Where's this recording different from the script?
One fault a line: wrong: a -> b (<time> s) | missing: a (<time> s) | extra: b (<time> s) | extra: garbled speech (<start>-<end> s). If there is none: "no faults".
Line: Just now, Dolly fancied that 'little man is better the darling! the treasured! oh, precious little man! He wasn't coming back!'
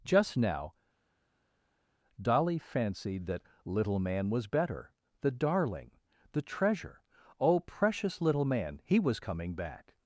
wrong: is -> was (4.3 s)
wrong: treasured -> treasure (6.4 s)
wrong: wasn't -> was (9.0 s)